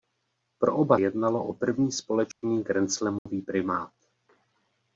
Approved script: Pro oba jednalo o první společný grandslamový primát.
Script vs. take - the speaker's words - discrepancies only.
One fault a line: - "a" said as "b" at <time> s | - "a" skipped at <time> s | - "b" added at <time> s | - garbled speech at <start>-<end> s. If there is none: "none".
none